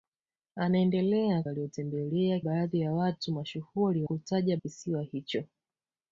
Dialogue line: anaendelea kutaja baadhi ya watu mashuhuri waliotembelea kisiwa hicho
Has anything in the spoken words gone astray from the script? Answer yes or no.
yes